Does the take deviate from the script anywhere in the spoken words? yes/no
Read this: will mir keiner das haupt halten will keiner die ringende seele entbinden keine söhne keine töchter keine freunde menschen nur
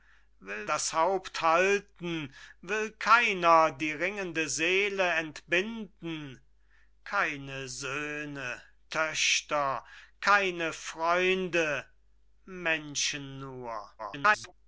yes